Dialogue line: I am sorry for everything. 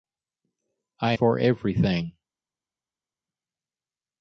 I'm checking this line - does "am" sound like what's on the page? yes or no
no